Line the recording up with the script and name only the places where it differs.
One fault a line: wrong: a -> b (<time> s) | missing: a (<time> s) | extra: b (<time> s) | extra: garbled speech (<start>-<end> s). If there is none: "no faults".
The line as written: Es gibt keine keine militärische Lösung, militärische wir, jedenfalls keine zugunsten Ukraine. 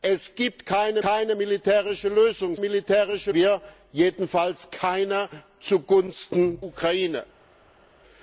no faults